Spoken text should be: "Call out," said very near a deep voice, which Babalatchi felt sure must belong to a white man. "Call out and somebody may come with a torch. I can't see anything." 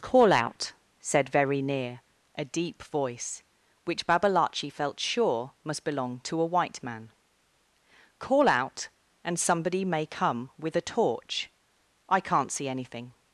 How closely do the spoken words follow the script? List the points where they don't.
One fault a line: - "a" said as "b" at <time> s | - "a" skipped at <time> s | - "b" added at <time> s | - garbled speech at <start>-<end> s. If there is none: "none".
none